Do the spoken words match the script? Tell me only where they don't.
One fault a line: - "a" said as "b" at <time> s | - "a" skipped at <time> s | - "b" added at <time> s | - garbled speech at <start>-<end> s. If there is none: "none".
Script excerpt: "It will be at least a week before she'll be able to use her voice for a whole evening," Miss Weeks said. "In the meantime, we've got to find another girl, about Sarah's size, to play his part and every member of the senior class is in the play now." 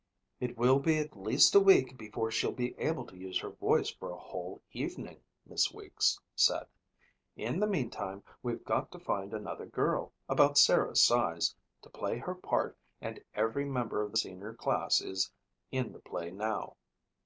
- "his" said as "her" at 12.2 s